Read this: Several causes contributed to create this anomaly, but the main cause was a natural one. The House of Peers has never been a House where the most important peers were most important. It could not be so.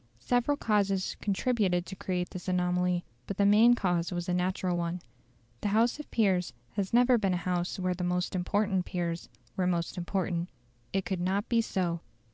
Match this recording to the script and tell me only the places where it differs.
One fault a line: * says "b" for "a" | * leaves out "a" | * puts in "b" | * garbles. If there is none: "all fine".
all fine